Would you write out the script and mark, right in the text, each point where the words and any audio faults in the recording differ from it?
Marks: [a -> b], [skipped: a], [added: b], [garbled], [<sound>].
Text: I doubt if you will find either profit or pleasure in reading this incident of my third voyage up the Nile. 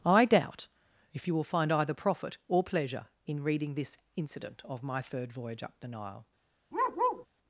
I doubt if you will find either profit or pleasure in reading this incident of my third voyage up the Nile. [bark]